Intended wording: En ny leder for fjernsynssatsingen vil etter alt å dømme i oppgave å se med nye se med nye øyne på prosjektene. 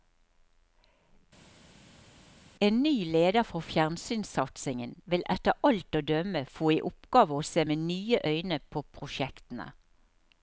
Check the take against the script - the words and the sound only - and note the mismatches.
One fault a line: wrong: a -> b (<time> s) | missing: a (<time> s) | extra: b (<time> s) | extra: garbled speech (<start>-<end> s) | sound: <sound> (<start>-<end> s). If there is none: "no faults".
extra: få (6.6 s)
missing: se med nye (8.2 s)